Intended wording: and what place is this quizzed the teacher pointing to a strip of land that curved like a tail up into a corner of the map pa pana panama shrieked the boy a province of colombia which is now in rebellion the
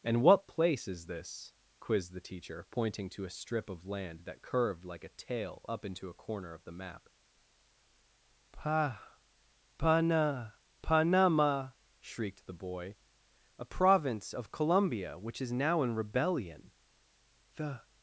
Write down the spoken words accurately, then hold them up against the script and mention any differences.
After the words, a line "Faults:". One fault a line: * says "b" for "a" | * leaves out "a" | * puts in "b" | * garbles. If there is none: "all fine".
and what place is this quizzed the teacher pointing to a strip of land that curved like a tail up into a corner of the map pa pana panama shrieked the boy a province of colombia which is now in rebellion the
Faults:
all fine